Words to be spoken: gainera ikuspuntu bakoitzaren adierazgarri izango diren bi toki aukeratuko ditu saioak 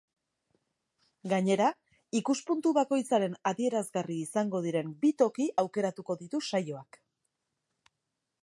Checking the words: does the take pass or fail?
pass